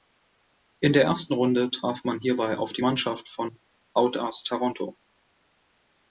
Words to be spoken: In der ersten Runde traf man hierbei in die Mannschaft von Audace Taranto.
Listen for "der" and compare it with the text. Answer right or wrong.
right